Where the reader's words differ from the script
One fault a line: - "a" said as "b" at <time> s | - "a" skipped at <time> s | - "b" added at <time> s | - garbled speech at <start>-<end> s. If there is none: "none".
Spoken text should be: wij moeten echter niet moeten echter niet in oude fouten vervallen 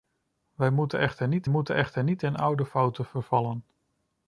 none